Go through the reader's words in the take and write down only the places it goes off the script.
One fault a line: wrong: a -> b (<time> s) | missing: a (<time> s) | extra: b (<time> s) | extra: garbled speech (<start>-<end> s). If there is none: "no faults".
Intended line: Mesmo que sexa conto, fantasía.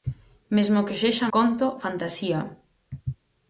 no faults